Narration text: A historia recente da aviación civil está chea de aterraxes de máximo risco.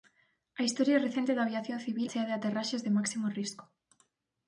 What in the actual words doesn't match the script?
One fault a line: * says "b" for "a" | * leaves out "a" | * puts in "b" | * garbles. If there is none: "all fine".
* leaves out "está"